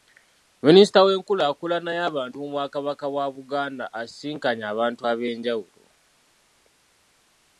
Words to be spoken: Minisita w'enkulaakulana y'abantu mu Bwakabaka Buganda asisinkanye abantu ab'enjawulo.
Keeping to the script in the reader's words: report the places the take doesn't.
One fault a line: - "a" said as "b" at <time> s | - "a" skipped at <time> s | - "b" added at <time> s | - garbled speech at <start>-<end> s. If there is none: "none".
- "bwa" added at 3.1 s